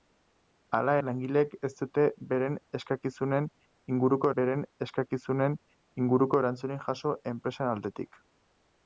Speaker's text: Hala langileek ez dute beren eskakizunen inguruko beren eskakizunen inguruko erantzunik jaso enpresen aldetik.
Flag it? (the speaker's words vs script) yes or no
no